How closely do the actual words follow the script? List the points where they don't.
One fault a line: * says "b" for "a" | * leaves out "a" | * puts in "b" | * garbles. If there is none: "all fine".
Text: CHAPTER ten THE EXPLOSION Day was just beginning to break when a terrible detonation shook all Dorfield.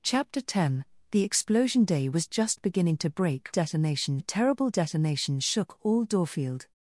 * says "detonation" for "when"